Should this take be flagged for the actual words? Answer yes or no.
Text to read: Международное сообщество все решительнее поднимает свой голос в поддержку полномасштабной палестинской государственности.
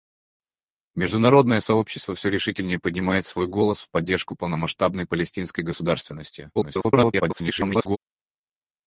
yes